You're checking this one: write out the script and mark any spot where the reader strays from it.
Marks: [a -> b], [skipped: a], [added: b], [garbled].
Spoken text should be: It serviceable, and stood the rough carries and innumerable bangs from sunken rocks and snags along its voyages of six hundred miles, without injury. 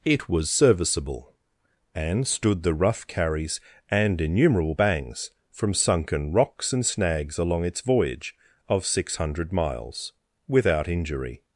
It [added: was] serviceable, and stood the rough carries and innumerable bangs from sunken rocks and snags along its [voyages -> voyage] of six hundred miles, without injury.